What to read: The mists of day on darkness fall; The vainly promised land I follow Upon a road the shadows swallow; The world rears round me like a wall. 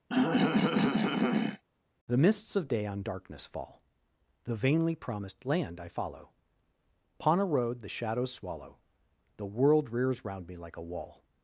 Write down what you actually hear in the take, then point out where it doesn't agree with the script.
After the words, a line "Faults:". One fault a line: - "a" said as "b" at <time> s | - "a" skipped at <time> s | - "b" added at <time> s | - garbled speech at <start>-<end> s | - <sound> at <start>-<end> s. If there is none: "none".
The mists of day on darkness fall; The vainly promised land I follow Upon a road the shadows swallow; The world rears round me like a wall.
Faults:
- throat clearing at 0.1-1.6 s